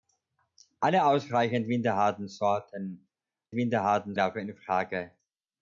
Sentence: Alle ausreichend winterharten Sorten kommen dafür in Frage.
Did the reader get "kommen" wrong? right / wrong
wrong